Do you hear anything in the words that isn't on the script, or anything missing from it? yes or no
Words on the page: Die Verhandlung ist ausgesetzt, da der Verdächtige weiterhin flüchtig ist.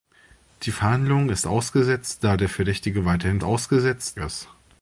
yes